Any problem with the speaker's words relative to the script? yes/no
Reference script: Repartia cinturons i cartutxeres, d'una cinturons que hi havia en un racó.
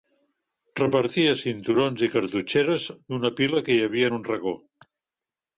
yes